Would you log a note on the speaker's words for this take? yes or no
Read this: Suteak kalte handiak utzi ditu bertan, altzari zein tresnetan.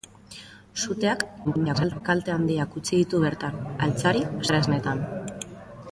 yes